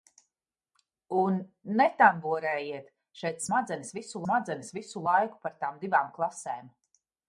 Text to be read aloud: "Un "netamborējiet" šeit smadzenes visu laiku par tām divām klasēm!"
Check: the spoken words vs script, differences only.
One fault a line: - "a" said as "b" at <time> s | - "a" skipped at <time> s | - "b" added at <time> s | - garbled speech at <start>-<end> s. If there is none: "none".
- "smadzenes visu" added at 4.2 s